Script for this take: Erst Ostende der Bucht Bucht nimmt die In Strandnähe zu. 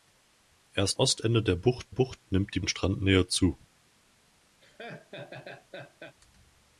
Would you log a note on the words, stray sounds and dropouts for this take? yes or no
yes